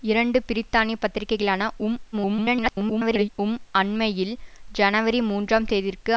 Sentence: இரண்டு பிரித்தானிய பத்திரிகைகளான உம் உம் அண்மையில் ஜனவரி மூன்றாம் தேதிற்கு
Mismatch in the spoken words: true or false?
true